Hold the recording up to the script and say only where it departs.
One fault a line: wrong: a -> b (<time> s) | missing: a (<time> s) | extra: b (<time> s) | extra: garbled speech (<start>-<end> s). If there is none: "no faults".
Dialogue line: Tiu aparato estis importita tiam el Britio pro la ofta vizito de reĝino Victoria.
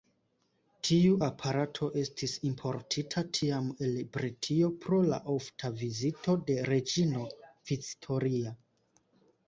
no faults